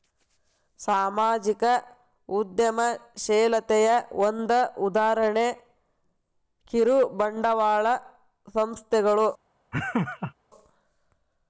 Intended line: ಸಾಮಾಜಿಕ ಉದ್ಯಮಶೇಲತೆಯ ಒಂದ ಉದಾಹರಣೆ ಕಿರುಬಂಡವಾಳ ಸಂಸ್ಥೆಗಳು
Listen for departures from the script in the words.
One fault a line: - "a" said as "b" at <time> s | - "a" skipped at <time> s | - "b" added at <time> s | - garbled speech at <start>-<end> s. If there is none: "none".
none